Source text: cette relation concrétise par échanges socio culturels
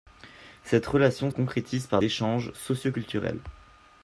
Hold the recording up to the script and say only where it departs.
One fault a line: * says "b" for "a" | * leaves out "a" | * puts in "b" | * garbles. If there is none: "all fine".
all fine